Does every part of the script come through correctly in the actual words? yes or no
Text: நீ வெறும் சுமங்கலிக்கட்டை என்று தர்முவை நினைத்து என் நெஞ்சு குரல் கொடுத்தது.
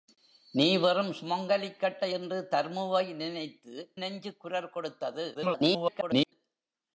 no